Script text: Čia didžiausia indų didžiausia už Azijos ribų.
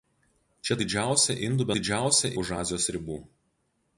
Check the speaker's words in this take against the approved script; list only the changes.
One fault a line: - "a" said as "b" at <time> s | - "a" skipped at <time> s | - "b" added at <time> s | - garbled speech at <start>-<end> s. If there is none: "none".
none